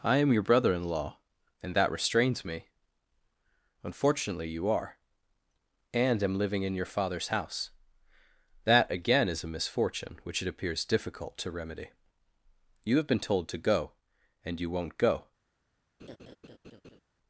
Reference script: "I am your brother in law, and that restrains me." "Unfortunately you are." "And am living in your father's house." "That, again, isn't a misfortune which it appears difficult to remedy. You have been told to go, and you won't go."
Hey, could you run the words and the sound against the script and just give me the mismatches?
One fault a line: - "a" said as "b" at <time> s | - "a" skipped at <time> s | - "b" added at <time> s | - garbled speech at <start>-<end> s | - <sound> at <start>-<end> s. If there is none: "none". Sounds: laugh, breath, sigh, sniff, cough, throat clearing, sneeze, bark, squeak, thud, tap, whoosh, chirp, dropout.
- "isn't" said as "is" at 9.3 s
- laugh at 16.0-17.0 s